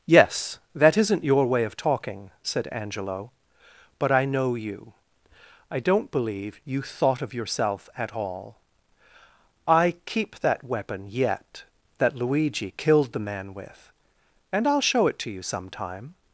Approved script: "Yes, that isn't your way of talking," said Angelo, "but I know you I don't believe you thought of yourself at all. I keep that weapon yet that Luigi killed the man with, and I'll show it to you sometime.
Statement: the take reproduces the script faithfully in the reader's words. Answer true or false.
true